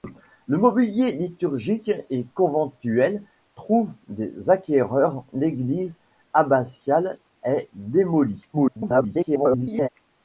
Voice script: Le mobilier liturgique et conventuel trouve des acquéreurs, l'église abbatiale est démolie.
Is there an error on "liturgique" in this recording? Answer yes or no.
no